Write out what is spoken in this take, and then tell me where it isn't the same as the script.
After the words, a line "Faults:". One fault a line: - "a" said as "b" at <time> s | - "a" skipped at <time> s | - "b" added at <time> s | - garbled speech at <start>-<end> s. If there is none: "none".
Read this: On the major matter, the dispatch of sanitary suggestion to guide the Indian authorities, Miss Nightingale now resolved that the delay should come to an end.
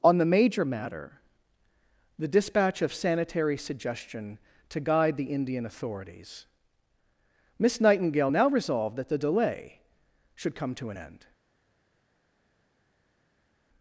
On the major matter, the dispatch of sanitary suggestion to guide the Indian authorities, Miss Nightingale now resolved that the delay should come to an end.
Faults:
none